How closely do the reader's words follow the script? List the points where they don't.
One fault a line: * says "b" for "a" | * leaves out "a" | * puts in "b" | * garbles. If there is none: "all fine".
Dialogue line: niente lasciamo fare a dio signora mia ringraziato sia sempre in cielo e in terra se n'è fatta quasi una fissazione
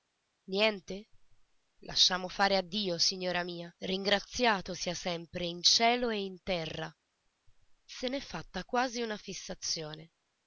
all fine